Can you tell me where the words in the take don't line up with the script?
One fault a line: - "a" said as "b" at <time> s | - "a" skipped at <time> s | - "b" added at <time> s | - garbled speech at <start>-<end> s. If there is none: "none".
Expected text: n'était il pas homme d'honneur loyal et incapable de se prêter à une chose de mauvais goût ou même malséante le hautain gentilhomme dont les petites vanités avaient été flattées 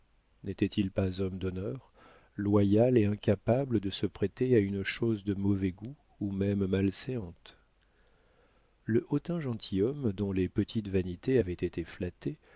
none